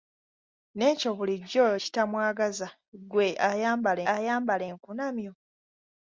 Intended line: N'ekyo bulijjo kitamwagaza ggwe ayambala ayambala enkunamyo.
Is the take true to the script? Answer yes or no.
yes